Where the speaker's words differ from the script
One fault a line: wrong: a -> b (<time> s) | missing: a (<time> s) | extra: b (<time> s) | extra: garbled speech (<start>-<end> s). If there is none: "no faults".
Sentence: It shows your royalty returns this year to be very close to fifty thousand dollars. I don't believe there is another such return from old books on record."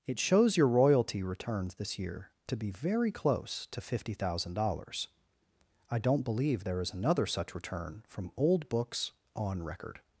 no faults